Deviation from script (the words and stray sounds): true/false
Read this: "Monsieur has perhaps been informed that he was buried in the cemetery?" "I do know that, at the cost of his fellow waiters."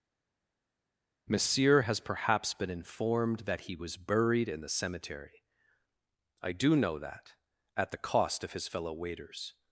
false